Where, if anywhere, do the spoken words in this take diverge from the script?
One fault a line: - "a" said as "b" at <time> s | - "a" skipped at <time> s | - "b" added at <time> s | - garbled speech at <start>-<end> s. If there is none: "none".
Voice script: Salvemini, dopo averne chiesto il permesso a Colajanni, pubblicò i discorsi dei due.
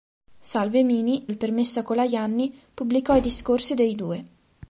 - "dopo averne chiesto" skipped at 1.3 s